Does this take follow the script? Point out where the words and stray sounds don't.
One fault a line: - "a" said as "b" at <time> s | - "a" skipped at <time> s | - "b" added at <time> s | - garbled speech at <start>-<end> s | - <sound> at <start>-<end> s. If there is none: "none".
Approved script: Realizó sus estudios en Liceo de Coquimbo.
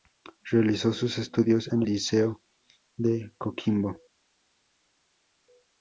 none